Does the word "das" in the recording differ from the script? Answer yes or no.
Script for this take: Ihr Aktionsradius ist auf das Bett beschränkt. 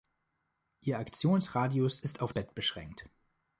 yes